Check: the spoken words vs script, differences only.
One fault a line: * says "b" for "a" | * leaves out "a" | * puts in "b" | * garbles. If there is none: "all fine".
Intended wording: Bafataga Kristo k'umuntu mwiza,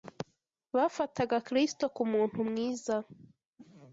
all fine